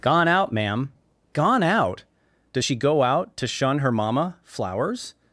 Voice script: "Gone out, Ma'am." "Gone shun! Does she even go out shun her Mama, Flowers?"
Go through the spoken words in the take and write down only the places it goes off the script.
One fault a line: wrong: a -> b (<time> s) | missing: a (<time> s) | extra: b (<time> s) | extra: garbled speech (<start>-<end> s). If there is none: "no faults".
wrong: shun -> out (1.6 s)
missing: even (2.7 s)
extra: to (3.4 s)